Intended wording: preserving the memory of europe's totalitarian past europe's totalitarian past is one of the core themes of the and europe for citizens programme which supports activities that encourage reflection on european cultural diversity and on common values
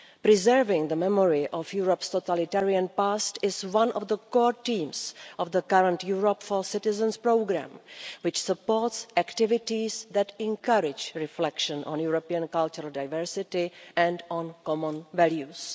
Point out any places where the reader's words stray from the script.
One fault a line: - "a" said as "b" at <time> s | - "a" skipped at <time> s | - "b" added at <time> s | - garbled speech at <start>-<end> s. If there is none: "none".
- "europe's totalitarian past" skipped at 3.4 s
- "and" said as "current" at 5.6 s